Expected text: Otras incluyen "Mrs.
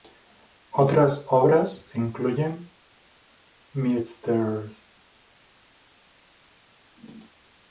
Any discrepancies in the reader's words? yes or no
yes